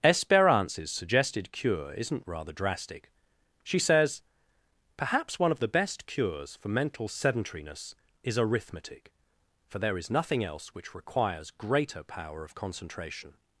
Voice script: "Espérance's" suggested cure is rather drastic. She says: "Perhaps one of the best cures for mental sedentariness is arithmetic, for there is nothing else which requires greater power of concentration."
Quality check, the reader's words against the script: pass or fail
fail